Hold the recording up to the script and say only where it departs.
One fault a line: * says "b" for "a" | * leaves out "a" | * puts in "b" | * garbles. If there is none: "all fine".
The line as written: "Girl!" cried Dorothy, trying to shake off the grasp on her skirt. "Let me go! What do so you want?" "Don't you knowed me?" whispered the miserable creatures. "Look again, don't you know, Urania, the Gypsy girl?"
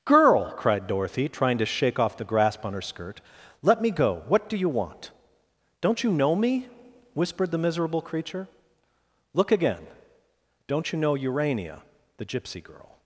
* leaves out "so"
* says "know" for "knowed"
* says "creature" for "creatures"